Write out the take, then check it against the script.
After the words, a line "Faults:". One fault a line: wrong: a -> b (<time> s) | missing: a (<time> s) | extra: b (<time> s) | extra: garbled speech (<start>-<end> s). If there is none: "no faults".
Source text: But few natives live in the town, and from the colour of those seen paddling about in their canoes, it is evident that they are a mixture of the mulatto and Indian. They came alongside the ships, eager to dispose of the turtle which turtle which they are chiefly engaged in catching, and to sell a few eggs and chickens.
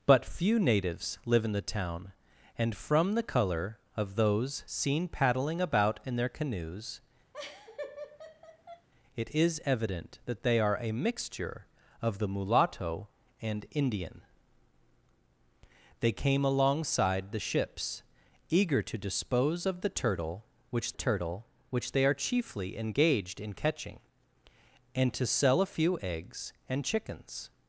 But few natives live in the town, and from the colour of those seen paddling about in their canoes, it is evident that they are a mixture of the mulatto and Indian. They came alongside the ships, eager to dispose of the turtle which turtle which they are chiefly engaged in catching, and to sell a few eggs and chickens.
Faults:
no faults